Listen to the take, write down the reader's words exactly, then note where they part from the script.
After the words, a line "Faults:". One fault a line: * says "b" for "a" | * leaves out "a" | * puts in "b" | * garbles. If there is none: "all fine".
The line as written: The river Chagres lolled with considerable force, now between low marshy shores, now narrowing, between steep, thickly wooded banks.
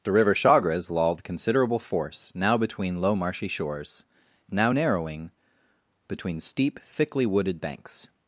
The river Chagres lolled considerable force, now between low marshy shores, now narrowing, between steep, thickly wooded banks.
Faults:
* leaves out "with"